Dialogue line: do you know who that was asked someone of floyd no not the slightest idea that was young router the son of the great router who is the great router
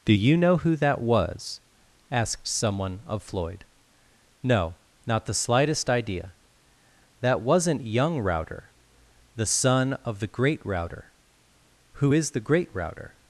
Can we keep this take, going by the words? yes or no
no